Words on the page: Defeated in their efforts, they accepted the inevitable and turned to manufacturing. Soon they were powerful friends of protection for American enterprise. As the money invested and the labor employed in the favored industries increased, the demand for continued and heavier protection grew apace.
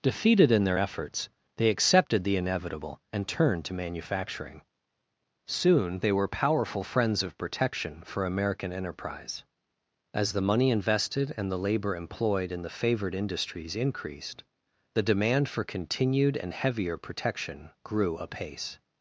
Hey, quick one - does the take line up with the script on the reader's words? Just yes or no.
yes